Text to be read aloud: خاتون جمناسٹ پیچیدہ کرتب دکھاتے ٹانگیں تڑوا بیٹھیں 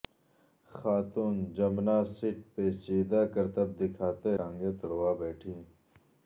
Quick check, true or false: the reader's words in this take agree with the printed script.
true